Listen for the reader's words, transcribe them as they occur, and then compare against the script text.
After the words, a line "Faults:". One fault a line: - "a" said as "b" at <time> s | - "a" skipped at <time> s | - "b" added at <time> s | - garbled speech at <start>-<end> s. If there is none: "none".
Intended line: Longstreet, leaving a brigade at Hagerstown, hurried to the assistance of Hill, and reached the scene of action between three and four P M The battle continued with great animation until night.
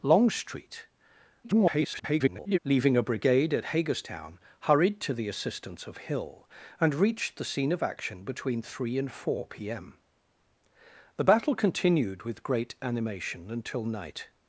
Longstreet, [garbled] leaving a brigade at Hagerstown, hurried to the assistance of Hill, and reached the scene of action between three and four P M The battle continued with great animation until night.
Faults:
- garbled speech at 1.4-2.6 s